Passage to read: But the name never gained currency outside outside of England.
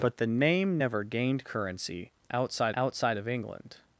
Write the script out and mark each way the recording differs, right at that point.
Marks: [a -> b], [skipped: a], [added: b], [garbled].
But the name never gained currency outside outside of England.